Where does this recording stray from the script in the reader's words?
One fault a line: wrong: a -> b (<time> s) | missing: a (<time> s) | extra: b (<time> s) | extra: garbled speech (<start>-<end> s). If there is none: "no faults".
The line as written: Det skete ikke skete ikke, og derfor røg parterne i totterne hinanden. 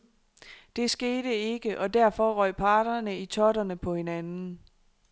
missing: skete ikke (1.8 s)
extra: på (3.8 s)